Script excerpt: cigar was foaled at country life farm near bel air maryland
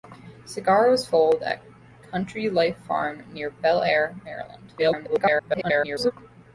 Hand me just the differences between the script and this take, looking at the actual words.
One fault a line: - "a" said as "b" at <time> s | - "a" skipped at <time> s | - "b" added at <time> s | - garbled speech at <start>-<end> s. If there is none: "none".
- garbled speech at 4.8-6.1 s